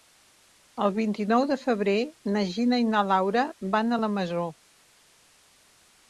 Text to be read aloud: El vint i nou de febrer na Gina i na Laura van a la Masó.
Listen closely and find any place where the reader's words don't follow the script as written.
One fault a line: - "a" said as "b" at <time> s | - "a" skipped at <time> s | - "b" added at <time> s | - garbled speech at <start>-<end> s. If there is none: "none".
none